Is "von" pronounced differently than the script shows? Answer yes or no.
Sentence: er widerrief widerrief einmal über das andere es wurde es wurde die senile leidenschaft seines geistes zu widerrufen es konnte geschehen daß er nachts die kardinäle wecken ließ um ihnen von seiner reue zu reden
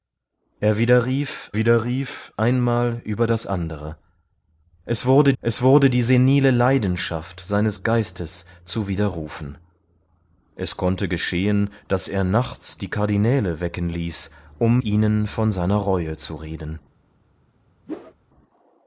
no